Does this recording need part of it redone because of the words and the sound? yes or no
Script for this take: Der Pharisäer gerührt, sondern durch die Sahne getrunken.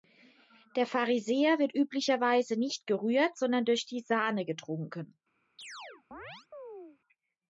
yes